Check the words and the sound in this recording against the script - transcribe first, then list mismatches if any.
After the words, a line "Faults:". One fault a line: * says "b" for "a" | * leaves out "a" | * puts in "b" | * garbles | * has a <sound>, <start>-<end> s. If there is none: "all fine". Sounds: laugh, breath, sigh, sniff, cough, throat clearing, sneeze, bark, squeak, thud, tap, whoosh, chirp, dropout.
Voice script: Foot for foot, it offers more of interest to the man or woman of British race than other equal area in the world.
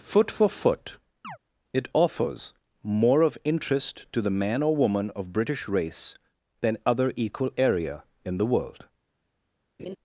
Foot for foot, it offers more of interest to the man or woman of British race than other equal area in the world.
Faults:
* has a chirp, 1.2-1.4 s
* has a laugh, 9.8-10.0 s